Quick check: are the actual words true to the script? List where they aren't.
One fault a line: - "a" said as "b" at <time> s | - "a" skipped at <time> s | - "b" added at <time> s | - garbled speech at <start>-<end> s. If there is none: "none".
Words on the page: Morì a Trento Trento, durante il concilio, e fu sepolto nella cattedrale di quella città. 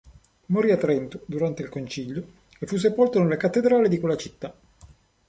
- "Trento" skipped at 1.2 s